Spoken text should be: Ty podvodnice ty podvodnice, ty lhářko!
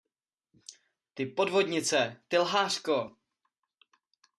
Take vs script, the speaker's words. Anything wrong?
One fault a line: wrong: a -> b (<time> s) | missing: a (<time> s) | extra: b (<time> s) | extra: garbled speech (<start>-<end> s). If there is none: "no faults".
missing: podvodnice ty (2.4 s)